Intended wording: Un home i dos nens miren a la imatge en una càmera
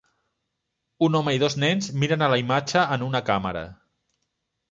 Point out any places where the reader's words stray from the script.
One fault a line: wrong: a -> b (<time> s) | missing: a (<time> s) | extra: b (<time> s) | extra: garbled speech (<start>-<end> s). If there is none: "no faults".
no faults